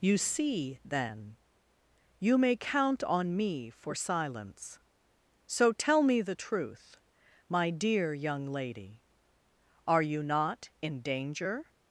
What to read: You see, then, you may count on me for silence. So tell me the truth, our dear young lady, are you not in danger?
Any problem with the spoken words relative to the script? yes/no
yes